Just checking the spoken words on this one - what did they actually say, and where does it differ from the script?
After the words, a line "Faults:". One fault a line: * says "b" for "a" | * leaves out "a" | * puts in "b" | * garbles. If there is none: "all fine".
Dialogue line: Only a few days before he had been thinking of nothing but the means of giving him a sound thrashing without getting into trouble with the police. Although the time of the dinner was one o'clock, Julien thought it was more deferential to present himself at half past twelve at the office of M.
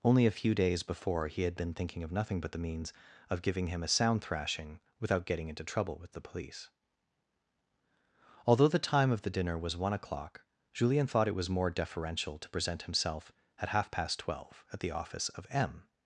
Only a few days before he had been thinking of nothing but the means of giving him a sound thrashing without getting into trouble with the police. Although the time of the dinner was one o'clock, Julien thought it was more deferential to present himself at half past twelve at the office of M.
Faults:
all fine